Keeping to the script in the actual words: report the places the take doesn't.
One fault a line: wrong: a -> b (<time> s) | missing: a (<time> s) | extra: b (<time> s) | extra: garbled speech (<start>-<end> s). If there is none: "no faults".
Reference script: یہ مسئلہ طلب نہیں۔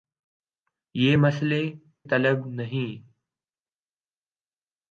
no faults